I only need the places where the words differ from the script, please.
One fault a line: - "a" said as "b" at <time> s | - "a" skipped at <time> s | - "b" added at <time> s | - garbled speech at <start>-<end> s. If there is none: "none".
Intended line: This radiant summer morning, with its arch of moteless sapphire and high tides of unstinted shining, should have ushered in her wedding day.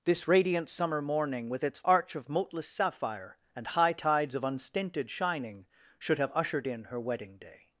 none